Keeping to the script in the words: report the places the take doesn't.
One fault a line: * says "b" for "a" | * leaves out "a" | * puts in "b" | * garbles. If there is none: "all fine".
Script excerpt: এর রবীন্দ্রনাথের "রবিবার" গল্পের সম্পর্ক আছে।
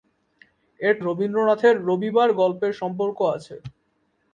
all fine